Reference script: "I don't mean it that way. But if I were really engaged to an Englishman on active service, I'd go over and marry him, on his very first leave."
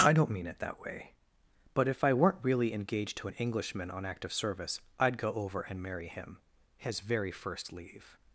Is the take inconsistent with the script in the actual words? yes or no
yes